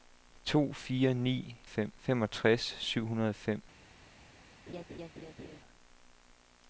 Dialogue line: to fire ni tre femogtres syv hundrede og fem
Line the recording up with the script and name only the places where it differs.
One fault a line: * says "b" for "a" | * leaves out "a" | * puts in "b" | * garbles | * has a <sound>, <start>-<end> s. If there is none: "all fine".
* says "fem" for "tre"
* has a laugh, 4.7-5.6 s